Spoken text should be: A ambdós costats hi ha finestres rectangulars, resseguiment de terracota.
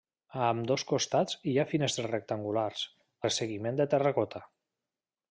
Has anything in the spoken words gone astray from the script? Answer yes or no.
no